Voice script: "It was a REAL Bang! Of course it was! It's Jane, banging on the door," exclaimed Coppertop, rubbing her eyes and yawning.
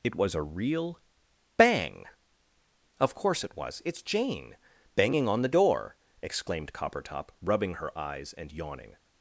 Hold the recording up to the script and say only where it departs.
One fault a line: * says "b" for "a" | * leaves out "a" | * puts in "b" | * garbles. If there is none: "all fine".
all fine